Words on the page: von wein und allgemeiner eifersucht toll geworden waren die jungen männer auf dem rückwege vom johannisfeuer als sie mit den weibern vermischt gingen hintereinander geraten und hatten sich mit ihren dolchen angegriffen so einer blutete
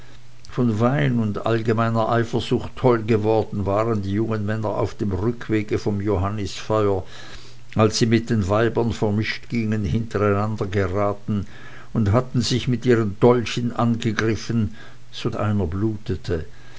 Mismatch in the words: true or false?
false